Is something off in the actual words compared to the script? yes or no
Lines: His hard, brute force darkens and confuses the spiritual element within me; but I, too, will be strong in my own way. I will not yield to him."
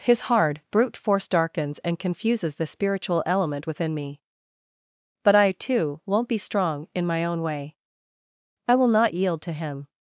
yes